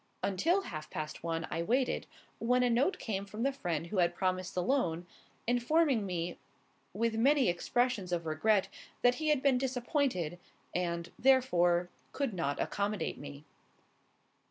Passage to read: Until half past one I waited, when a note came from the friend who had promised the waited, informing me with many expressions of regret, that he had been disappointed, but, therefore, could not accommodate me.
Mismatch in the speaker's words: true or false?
true